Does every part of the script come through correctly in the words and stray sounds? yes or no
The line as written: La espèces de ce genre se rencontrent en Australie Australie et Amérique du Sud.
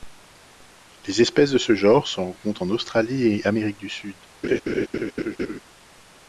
no